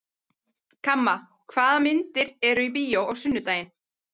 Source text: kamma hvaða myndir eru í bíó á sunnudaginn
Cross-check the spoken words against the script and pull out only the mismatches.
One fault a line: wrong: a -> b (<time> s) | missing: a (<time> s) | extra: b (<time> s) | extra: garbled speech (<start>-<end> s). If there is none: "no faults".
no faults